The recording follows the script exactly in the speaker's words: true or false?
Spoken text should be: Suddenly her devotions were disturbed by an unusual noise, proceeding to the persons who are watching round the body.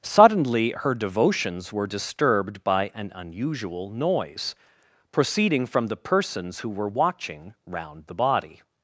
false